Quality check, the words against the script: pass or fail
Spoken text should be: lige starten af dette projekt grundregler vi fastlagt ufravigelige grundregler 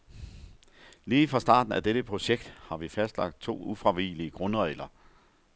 fail